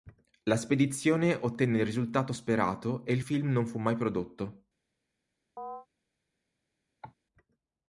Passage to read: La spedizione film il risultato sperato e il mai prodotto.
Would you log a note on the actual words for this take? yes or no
yes